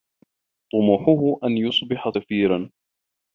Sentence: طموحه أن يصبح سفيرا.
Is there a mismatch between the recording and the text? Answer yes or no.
no